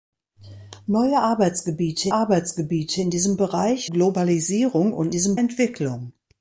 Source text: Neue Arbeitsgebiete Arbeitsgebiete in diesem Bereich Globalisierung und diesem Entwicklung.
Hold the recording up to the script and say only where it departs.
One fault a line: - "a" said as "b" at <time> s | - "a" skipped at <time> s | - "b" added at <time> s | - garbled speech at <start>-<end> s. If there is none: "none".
none